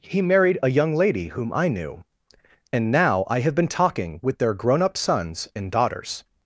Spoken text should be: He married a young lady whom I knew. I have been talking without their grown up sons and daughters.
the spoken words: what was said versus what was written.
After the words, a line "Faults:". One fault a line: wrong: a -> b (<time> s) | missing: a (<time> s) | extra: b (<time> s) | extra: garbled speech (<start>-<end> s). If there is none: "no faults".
He married a young lady whom I knew. And now I have been talking with their grown up sons and daughters.
Faults:
extra: And now (2.7 s)
wrong: without -> with (4.2 s)